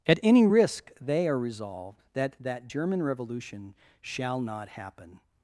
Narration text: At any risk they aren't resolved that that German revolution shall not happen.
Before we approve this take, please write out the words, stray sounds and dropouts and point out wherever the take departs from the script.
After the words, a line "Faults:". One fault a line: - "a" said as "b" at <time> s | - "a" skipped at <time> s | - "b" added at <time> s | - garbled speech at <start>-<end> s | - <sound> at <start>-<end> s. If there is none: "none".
At any risk they are resolved that that German revolution shall not happen.
Faults:
- "aren't" said as "are" at 1.3 s